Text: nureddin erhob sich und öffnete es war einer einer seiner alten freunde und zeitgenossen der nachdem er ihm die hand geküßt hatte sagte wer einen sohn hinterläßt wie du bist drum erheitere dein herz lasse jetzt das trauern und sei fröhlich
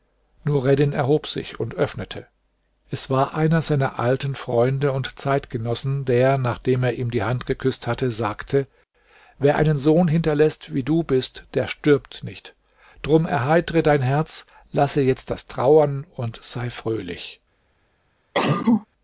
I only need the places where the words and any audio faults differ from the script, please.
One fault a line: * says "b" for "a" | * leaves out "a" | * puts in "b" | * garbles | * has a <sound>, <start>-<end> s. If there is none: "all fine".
* leaves out "einer"
* puts in "der stirbt nicht"
* has a cough, 18.3-18.9 s